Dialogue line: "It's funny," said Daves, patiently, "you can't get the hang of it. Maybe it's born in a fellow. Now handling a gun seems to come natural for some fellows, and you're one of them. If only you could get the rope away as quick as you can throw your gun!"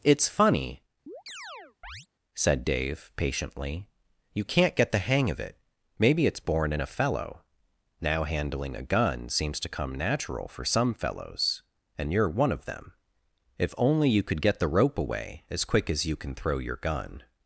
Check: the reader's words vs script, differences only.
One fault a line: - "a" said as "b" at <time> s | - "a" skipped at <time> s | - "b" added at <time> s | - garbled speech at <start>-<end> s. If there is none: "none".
- "Daves" said as "Dave" at 2.6 s